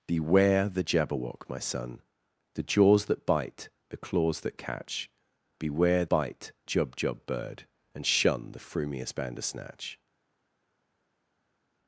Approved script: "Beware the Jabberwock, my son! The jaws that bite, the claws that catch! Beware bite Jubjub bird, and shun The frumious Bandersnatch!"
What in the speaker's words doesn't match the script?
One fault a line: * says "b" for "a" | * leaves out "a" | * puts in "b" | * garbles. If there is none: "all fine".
all fine